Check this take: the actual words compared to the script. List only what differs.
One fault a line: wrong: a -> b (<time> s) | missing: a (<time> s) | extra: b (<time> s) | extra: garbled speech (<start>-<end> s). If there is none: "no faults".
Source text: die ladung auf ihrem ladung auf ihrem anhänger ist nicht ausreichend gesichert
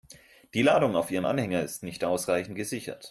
missing: ladung auf ihrem (1.3 s)